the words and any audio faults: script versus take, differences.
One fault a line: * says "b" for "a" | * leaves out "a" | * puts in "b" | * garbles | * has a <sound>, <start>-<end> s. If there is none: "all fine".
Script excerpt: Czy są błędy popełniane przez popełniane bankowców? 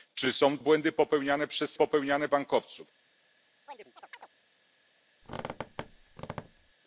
* has a chirp, 3.7-4.3 s
* has a squeak, 5.2-6.7 s